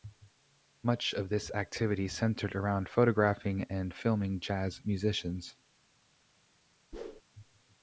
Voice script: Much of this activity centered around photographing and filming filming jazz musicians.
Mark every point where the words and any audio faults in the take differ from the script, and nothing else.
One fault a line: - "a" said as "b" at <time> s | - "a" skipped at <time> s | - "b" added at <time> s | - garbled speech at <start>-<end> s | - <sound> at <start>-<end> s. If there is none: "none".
- "filming" skipped at 4.4 s
- whoosh at 6.9-7.2 s